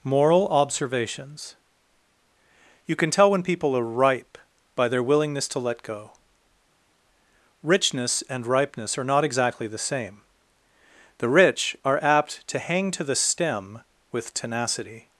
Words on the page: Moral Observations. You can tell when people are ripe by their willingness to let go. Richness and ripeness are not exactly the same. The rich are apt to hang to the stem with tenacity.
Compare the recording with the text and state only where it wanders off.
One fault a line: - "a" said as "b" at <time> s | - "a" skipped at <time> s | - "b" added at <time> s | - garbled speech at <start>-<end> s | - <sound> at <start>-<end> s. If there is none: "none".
none